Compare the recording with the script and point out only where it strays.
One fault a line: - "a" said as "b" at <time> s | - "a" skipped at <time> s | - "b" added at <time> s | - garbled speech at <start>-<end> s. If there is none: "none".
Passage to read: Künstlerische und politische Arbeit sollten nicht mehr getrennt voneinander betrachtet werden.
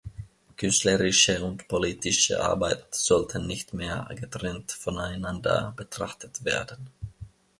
none